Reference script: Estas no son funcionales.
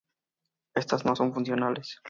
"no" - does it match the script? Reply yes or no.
yes